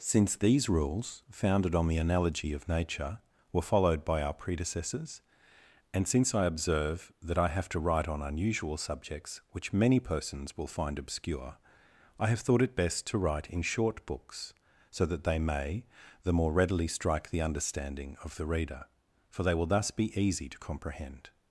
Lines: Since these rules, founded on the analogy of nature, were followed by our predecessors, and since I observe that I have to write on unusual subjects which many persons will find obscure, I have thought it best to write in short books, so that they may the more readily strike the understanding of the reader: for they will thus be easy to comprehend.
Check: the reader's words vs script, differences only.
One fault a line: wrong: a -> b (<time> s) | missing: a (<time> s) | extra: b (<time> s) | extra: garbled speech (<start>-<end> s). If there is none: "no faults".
no faults